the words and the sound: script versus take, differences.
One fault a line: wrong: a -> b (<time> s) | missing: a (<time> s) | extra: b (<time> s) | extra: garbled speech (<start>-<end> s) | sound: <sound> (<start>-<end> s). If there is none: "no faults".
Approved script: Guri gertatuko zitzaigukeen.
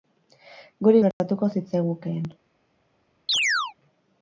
sound: dropout (1.1-1.2 s)
sound: chirp (3.3-3.7 s)